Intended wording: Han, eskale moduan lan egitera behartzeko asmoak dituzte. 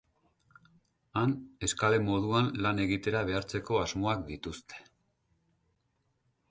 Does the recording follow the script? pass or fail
pass